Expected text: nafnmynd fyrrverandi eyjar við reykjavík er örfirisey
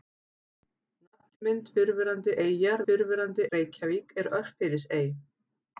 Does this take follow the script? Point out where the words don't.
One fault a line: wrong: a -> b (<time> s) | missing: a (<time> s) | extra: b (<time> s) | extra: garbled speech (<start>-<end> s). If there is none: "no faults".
wrong: við -> fyrrverandi (2.9 s)